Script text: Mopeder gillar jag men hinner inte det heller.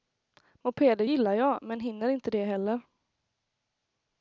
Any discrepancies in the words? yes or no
no